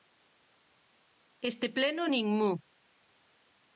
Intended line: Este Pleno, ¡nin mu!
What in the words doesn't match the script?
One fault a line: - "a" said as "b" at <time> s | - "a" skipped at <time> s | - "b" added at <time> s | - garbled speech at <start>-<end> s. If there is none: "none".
none